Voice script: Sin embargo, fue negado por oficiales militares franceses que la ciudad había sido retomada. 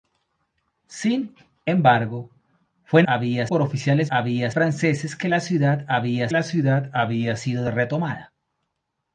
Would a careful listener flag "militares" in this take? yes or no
yes